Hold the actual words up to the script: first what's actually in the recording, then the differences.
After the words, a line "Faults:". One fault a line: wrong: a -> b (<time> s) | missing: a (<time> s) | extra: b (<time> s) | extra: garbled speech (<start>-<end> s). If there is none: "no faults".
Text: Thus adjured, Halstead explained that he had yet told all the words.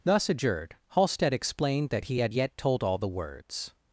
Thus adjured, Halstead explained that he had yet told all the words.
Faults:
no faults